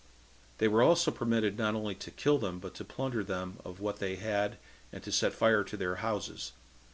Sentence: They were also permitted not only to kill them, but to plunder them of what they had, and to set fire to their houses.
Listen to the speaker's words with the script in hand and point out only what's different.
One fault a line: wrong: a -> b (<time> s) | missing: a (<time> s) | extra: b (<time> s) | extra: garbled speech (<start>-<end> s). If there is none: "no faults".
no faults